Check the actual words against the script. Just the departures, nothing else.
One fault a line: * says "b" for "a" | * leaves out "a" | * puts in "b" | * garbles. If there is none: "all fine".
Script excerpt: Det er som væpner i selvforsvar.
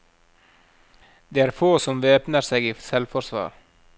* puts in "få"
* puts in "seg"